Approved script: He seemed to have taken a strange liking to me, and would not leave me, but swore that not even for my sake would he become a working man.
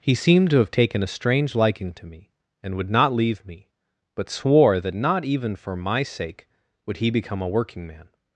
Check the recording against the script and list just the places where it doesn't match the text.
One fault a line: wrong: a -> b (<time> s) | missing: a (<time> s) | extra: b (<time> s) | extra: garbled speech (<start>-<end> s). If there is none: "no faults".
no faults